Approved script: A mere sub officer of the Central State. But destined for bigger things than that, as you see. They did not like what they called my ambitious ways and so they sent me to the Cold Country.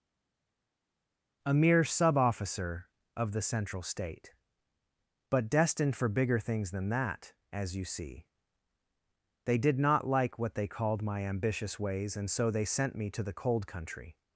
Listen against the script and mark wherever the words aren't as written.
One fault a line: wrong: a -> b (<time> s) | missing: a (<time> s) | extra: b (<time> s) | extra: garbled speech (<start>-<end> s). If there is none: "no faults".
no faults